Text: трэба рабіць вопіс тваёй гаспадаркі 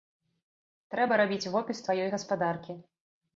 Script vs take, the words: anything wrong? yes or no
no